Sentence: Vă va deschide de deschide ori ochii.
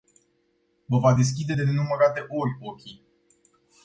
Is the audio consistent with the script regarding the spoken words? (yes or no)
no